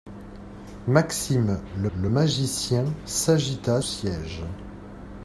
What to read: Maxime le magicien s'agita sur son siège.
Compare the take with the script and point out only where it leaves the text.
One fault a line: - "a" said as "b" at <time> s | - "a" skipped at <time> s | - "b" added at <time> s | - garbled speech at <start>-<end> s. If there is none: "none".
- "le" added at 2.0 s
- "sur son" skipped at 3.8 s